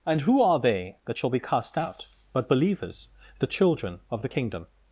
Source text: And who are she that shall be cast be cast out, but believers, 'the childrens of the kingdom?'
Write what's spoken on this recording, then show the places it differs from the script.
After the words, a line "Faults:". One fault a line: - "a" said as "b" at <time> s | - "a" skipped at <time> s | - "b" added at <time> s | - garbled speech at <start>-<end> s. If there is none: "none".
And who are they that shall be cast out, but believers, 'the children of the kingdom?'
Faults:
- "she" said as "they" at 0.6 s
- "be cast" skipped at 1.8 s
- "childrens" said as "children" at 3.5 s